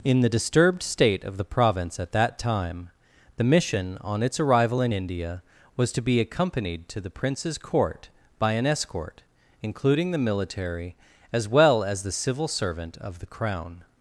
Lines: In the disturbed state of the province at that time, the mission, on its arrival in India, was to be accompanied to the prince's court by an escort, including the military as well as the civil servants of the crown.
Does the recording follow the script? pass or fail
fail